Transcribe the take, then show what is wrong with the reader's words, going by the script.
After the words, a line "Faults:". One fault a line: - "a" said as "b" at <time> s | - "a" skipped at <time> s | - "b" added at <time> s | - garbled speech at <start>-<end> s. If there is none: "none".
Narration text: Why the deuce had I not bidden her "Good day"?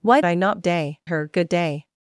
Why I not day her "Good day"?
Faults:
- "the deuce had" skipped at 0.2 s
- "bidden" said as "day" at 0.6 s